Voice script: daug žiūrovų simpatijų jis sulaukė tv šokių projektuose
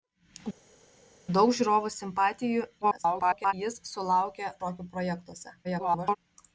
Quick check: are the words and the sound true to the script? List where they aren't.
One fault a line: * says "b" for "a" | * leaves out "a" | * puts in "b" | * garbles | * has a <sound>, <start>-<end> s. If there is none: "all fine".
* garbles
* leaves out "tv"
* garbles